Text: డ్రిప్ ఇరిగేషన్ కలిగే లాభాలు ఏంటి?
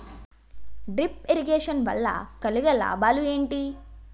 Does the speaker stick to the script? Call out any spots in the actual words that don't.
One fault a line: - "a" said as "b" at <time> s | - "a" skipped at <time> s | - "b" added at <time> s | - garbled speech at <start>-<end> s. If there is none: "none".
- "వల్ల" added at 1.9 s